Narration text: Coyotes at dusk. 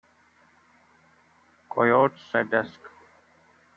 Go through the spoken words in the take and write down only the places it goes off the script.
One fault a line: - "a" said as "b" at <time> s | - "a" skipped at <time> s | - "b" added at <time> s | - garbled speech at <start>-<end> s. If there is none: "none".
none